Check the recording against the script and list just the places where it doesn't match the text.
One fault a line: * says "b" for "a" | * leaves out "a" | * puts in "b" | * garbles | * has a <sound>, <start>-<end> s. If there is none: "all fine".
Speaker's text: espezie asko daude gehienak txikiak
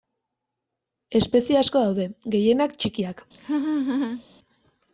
* has a laugh, 3.3-4.2 s